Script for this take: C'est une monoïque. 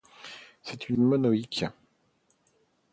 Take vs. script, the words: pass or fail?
pass